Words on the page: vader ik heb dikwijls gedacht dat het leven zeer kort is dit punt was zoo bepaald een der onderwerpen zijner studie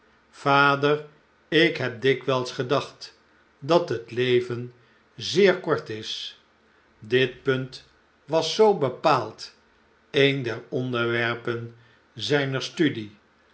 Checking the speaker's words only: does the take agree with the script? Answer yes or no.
yes